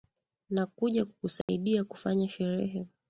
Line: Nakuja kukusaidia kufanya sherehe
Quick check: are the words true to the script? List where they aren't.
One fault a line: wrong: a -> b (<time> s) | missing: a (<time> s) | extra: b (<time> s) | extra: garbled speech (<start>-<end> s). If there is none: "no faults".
no faults